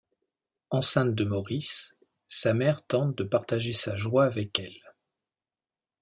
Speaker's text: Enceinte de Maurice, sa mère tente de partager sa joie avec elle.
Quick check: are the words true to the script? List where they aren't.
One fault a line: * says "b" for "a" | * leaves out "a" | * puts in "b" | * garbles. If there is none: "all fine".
all fine